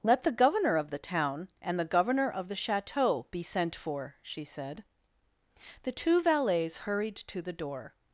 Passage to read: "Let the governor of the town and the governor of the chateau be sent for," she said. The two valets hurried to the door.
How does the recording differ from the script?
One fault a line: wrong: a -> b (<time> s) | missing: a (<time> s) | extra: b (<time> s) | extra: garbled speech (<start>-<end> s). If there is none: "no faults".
no faults